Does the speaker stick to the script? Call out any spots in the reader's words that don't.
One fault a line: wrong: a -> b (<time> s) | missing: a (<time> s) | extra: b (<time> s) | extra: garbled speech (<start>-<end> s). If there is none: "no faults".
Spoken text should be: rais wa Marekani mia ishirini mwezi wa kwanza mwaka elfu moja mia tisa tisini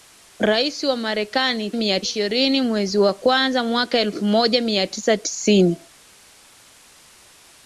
no faults